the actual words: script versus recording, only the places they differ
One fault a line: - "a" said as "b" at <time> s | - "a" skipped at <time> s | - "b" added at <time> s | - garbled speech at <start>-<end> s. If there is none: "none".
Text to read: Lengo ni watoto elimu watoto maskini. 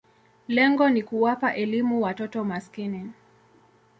- "watoto" said as "kuwapa" at 1.0 s